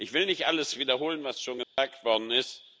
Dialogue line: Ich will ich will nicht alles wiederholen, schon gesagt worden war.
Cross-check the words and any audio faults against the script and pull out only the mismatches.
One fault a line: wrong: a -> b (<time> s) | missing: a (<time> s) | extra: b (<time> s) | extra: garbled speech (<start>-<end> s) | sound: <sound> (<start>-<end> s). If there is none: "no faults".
missing: ich will (0.2 s)
extra: was (1.2 s)
sound: dropout (1.6-1.8 s)
wrong: war -> ist (2.3 s)